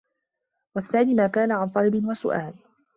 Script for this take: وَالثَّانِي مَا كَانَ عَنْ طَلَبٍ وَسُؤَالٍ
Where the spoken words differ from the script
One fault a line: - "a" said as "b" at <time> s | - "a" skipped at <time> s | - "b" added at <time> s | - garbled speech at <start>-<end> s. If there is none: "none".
none